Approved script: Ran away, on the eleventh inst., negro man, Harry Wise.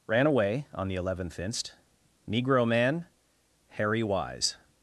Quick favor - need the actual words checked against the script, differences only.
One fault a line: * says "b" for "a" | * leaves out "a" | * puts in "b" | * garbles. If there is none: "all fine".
all fine